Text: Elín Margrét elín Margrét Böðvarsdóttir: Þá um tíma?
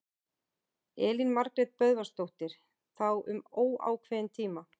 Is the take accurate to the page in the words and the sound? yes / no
no